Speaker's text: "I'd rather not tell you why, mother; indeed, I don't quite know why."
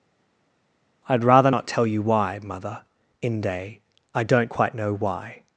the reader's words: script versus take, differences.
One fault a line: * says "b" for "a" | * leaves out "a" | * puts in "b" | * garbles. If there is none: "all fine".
* says "inde" for "indeed"